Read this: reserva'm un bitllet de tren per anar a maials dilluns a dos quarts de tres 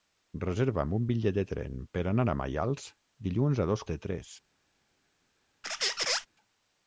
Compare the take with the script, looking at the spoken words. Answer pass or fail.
fail